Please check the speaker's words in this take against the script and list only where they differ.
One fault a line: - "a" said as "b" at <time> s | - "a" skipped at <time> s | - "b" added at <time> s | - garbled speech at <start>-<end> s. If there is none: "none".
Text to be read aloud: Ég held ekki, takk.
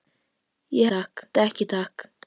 - "held" said as "takk" at 0.8 s